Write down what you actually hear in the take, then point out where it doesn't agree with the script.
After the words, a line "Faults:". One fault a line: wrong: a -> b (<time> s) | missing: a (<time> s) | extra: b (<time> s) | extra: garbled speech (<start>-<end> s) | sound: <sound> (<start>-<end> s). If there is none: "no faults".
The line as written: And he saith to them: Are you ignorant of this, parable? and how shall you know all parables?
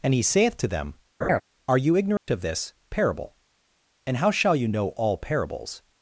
And he saith to them: Are you ignorant of this, parable? and how shall you know all parables?
Faults:
sound: laugh (1.2-1.4 s)
sound: dropout (2.2-2.3 s)